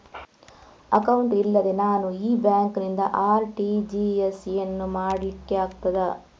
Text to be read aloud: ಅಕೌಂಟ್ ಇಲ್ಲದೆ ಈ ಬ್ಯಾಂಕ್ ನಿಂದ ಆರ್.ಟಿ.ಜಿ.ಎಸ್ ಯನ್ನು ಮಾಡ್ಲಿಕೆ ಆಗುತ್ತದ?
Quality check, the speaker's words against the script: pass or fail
fail